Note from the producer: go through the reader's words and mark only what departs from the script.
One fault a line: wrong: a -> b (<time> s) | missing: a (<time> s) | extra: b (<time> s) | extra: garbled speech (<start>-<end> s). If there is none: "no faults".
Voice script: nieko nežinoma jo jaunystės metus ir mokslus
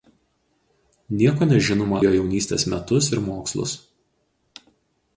no faults